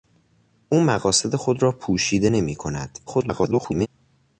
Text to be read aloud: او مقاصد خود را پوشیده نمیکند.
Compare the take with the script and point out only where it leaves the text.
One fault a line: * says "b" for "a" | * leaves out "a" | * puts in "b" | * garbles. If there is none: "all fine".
* garbles